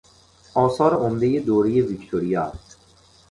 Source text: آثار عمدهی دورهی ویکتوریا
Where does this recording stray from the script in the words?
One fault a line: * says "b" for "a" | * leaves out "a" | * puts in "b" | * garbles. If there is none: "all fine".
all fine